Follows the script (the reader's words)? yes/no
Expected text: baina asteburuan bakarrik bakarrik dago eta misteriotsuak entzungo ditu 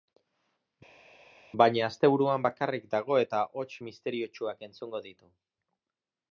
no